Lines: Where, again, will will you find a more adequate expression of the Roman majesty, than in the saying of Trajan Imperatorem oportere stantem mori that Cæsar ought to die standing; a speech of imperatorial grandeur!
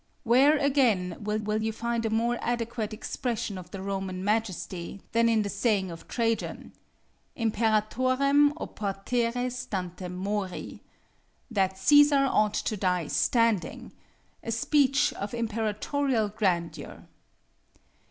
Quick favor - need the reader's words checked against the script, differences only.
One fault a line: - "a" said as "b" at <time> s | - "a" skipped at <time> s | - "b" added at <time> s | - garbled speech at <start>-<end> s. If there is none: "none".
none